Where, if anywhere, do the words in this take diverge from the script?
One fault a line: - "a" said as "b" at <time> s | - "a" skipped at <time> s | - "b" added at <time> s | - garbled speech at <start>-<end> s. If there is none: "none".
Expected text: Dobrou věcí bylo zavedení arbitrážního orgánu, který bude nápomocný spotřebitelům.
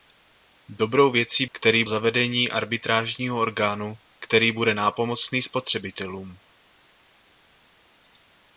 - "bylo" said as "který" at 1.5 s